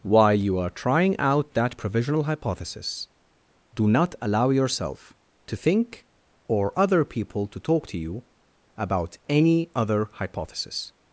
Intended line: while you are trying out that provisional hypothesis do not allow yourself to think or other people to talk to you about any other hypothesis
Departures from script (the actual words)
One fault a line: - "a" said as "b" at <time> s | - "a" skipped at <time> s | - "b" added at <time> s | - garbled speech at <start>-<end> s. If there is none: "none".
none